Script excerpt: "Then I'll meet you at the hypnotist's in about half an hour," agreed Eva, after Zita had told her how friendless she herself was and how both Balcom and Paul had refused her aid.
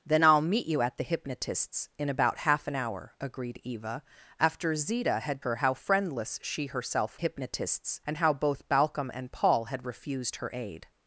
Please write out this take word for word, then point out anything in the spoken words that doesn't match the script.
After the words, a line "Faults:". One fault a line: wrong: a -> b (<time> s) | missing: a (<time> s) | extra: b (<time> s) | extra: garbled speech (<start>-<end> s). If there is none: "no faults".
"Then I'll meet you at the hypnotist's in about half an hour," agreed Eva, after Zita had her how friendless she herself hypnotist's and how both Balcom and Paul had refused her aid.
Faults:
missing: told (5.4 s)
wrong: was -> hypnotist's (7.1 s)